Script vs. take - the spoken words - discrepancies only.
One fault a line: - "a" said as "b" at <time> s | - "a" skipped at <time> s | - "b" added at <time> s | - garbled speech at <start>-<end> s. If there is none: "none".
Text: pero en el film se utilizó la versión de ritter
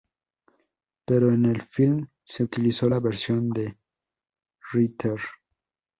none